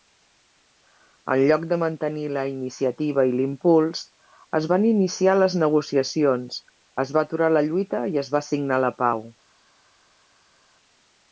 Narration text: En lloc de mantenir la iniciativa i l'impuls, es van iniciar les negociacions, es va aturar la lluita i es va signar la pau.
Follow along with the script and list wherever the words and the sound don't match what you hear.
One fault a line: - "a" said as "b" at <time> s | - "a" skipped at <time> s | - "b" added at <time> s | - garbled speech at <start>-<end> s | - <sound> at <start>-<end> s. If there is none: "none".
none